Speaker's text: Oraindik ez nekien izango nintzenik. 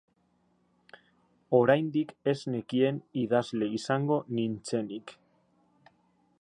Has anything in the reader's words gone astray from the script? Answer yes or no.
yes